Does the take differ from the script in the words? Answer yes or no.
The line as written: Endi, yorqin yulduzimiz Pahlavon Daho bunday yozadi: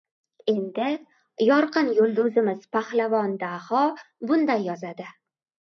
no